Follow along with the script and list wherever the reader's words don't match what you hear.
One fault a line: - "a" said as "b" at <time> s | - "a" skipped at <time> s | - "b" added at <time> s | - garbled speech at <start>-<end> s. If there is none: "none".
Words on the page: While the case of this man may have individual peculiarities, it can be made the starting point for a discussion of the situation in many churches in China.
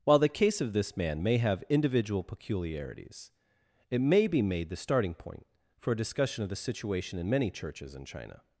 - "can" said as "may" at 4.0 s